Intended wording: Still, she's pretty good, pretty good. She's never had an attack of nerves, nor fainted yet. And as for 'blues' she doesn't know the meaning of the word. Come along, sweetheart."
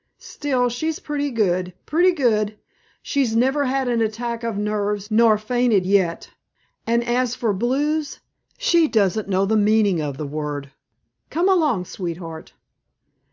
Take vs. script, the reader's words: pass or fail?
pass